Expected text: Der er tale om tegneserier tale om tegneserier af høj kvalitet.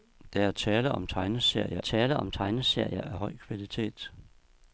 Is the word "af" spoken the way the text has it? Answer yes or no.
yes